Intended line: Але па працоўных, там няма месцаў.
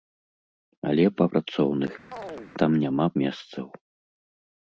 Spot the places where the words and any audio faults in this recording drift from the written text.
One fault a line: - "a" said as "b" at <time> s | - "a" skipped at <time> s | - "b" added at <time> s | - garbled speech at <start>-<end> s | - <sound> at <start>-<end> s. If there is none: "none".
- chirp at 2.1-2.5 s